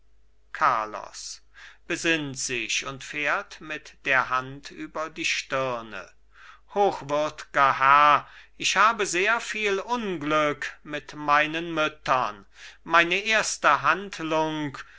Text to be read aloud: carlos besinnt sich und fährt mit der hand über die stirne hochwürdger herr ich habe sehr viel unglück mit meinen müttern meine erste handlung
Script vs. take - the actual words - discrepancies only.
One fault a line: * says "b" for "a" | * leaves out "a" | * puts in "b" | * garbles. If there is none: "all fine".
all fine